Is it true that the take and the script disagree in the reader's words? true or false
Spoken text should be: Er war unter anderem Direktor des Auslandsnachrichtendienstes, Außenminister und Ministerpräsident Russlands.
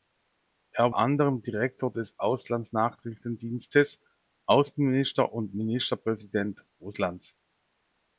true